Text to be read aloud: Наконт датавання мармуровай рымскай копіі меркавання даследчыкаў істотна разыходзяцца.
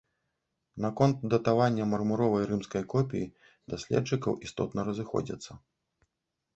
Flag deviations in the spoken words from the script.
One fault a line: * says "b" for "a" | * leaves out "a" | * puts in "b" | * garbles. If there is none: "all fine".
* leaves out "меркавання"